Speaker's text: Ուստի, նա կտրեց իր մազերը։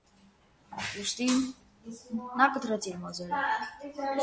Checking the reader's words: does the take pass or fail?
pass